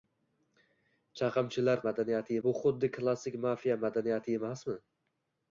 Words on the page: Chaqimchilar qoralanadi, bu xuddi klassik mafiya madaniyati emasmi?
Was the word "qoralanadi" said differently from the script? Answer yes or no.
yes